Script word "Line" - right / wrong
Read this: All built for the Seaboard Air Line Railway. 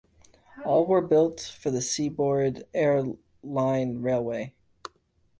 right